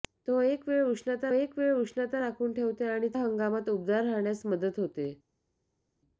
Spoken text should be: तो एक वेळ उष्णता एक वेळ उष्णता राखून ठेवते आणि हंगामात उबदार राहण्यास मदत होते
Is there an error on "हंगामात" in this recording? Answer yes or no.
no